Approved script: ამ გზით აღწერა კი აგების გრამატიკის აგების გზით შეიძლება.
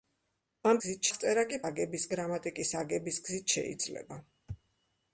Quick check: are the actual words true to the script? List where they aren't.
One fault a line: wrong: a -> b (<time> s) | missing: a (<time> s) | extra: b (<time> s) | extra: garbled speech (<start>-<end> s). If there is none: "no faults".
no faults